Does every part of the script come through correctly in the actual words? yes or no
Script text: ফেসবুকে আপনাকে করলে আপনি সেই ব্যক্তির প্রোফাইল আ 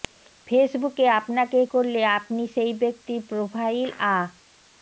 yes